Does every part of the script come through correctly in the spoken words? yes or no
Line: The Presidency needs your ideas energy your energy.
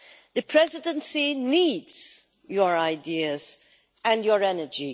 no